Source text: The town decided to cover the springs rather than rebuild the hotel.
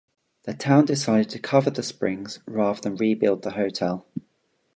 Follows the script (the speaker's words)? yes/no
yes